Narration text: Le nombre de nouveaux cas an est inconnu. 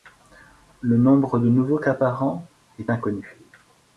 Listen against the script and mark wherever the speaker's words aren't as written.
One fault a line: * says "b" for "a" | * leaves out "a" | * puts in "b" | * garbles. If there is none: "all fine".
* puts in "par"